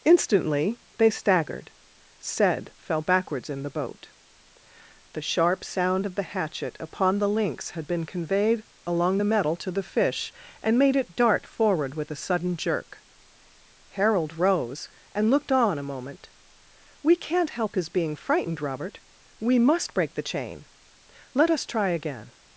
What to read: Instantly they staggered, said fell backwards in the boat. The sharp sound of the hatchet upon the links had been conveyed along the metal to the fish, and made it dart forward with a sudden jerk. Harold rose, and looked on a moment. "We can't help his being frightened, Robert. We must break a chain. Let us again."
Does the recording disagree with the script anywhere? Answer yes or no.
yes